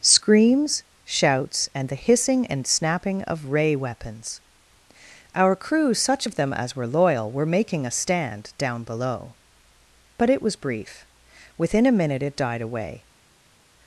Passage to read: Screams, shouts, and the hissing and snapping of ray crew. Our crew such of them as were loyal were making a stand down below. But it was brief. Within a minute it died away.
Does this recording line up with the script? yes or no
no